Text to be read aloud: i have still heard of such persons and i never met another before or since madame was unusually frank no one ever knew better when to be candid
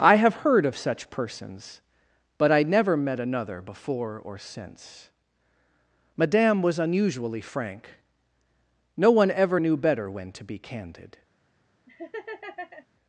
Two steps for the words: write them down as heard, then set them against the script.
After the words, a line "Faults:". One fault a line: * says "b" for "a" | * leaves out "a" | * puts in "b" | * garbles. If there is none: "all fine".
i have heard of such persons but i never met another before or since madame was unusually frank no one ever knew better when to be candid
Faults:
* leaves out "still"
* says "but" for "and"